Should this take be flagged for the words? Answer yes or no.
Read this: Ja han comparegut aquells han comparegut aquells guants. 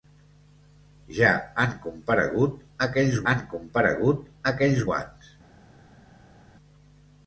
no